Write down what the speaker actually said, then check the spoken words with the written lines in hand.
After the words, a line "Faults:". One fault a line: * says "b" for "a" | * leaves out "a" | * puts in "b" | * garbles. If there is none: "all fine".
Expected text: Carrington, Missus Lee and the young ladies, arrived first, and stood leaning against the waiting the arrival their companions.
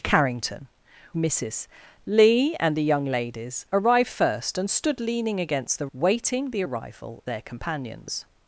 Carrington, Missus Lee and the young ladies, arrived first, and stood leaning against the waiting the arrival their companions.
Faults:
all fine